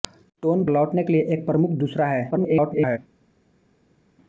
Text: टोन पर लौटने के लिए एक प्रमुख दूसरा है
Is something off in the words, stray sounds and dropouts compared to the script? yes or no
yes